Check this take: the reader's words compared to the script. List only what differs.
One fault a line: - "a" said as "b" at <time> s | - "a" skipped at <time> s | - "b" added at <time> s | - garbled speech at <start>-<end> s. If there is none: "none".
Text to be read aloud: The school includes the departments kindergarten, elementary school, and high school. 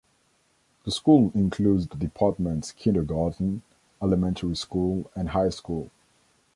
none